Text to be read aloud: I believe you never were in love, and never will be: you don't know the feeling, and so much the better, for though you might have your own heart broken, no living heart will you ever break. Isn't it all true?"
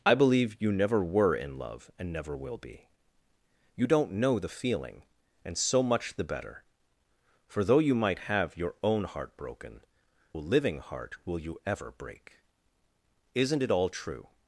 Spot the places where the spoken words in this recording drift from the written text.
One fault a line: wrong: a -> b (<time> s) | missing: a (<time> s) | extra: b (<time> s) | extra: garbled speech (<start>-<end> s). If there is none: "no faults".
missing: no (9.8 s)